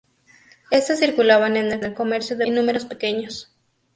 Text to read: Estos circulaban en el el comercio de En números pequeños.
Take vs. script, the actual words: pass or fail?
pass